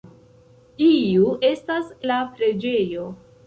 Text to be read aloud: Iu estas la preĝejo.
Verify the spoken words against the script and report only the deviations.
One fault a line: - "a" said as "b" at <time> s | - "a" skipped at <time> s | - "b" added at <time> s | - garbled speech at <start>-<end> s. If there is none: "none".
none